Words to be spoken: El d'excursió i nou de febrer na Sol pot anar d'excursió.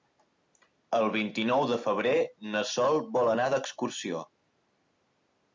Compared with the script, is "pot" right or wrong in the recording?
wrong